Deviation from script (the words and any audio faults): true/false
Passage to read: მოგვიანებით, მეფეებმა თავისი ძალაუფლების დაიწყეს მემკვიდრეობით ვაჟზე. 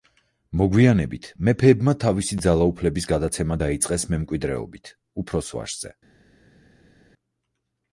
true